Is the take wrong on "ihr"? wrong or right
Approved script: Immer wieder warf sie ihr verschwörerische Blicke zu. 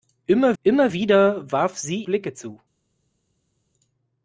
wrong